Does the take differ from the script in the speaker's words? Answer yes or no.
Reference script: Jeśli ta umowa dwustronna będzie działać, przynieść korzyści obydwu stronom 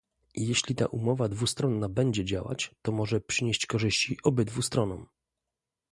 yes